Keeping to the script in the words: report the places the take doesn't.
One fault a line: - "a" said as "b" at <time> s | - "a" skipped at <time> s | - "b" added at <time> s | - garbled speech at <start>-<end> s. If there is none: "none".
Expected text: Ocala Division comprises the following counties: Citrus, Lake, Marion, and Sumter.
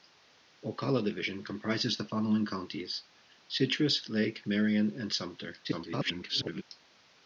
- garbled speech at 5.6-6.6 s